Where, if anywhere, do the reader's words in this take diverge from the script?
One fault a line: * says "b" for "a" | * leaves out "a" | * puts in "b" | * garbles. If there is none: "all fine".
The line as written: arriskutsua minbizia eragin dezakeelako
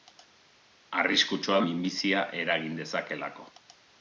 all fine